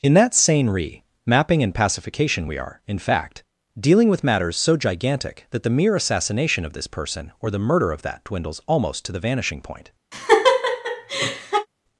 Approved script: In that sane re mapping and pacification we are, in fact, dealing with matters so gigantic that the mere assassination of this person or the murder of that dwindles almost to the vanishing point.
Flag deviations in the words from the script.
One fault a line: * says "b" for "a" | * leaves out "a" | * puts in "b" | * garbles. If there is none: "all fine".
all fine